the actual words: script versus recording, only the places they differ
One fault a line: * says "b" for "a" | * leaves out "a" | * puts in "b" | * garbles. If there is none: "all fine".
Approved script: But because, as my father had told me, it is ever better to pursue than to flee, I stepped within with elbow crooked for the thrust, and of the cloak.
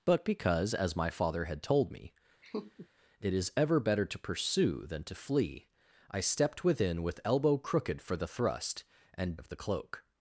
all fine